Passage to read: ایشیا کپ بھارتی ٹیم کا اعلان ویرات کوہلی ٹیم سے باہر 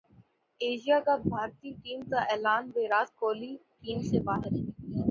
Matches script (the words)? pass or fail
pass